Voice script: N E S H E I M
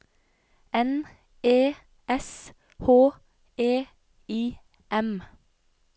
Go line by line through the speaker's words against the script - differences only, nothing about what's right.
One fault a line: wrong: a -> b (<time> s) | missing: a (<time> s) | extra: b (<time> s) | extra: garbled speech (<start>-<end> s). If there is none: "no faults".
no faults